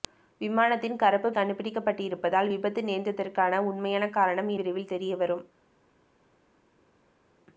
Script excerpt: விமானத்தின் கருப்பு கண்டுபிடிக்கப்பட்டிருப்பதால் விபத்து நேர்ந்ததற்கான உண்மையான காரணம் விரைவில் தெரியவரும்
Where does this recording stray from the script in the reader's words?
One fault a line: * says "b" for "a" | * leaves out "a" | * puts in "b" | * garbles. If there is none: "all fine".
all fine